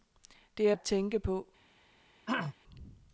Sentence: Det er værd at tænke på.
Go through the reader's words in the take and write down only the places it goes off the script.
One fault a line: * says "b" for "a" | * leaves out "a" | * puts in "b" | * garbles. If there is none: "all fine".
* leaves out "værd"